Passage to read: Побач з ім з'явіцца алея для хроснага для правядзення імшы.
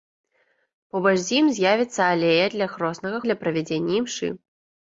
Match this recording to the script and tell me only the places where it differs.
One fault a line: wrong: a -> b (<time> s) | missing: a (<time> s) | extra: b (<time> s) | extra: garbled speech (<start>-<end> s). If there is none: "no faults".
no faults